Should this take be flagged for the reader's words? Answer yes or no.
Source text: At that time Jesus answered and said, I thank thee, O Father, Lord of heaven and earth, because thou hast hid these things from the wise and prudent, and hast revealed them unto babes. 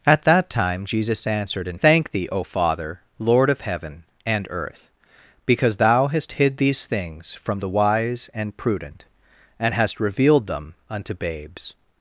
yes